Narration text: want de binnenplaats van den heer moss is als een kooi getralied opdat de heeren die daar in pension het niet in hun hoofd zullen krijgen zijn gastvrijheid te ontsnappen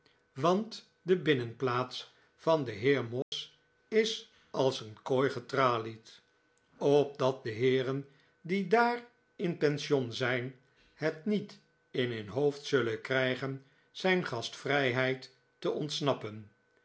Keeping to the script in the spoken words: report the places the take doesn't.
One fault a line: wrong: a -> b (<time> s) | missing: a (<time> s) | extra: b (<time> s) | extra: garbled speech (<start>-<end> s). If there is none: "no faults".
extra: zijn (10.1 s)